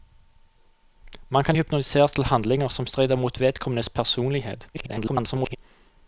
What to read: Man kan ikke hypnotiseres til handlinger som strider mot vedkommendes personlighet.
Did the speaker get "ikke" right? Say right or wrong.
wrong